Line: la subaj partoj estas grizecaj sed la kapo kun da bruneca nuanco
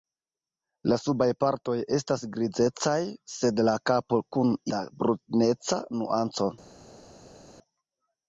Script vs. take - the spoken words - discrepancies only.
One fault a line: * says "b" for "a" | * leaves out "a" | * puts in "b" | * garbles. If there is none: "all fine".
all fine